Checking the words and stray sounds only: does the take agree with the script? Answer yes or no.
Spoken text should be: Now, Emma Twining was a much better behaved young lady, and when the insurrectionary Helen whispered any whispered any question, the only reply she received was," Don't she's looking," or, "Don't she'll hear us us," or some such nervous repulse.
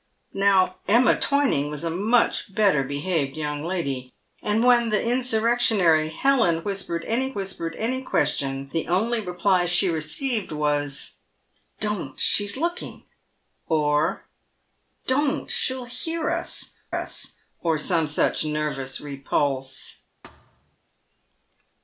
no